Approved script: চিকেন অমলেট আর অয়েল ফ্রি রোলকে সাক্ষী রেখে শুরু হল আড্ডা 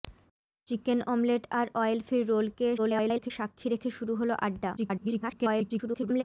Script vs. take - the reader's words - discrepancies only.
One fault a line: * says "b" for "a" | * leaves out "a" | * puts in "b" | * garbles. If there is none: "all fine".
* garbles
* garbles